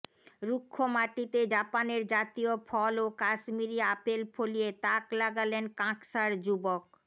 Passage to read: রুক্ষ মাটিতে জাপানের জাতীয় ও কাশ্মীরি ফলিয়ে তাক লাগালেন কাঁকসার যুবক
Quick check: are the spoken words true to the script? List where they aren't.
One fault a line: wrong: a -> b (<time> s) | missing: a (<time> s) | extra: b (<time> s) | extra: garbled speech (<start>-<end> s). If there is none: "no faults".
extra: ফল (2.7 s)
extra: আপেল (3.9 s)